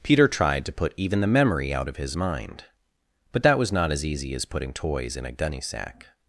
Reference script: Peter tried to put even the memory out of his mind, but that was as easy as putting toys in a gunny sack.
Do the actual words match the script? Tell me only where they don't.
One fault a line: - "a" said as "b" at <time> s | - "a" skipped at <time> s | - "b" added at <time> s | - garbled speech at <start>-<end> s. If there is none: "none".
- "not" added at 3.7 s